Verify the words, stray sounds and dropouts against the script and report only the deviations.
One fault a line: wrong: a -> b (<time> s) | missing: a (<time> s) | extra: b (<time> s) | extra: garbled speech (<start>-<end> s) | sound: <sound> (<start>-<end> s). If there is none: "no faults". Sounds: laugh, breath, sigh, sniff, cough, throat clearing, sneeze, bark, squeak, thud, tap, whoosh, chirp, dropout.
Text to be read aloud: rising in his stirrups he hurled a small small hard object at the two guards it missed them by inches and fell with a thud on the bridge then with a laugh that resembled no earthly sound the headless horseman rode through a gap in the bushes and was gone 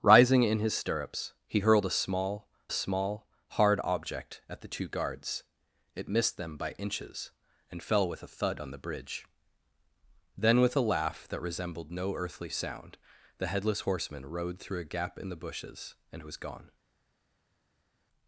no faults